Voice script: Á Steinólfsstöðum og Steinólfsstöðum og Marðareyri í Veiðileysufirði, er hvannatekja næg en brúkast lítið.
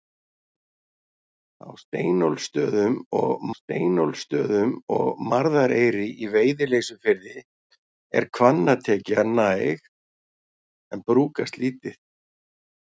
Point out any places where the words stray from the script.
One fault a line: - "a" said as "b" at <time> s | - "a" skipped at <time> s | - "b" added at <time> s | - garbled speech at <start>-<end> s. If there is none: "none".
none